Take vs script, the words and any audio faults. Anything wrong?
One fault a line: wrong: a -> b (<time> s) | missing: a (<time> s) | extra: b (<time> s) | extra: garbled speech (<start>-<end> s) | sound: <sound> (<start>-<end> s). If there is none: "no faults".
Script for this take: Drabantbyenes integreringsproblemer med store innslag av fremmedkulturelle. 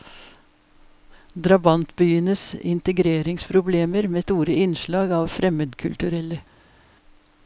no faults